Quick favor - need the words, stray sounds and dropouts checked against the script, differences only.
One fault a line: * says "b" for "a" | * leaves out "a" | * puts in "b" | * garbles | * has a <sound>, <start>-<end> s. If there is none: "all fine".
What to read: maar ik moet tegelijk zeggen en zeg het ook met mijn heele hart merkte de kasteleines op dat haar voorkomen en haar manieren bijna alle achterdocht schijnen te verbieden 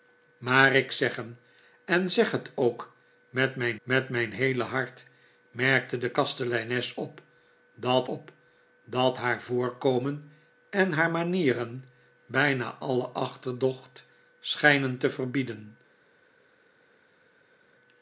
* leaves out "moet tegelijk"
* puts in "met mijn"
* puts in "op dat"